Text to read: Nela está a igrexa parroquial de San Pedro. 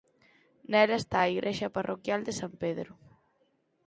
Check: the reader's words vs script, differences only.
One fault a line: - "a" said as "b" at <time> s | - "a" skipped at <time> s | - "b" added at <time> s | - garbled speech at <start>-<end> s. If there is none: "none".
none